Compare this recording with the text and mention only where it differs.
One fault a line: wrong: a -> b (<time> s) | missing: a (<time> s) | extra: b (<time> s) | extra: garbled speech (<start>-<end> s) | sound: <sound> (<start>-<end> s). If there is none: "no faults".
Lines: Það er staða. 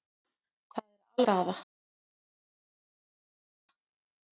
no faults